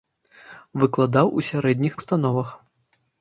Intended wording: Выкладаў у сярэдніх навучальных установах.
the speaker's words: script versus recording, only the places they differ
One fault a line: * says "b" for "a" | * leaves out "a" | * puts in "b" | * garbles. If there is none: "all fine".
* leaves out "навучальных"